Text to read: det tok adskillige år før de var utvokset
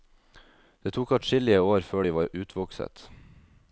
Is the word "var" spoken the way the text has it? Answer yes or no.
yes